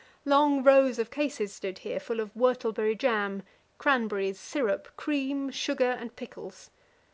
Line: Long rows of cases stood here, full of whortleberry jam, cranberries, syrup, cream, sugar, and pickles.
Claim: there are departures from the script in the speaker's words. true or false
false